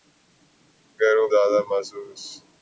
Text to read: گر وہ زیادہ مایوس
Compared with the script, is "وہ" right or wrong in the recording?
right